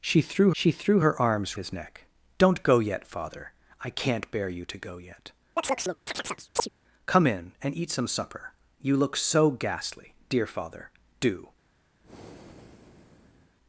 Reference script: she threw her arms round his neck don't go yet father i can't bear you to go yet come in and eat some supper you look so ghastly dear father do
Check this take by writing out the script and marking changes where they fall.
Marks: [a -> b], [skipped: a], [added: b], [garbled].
she threw [added: she threw] her arms [skipped: round] his neck don't go yet father i can't bear you to go yet come in and eat some supper you look so ghastly dear father do